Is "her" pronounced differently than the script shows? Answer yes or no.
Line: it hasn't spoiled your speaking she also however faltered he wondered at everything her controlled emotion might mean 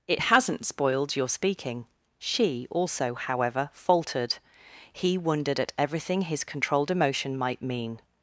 yes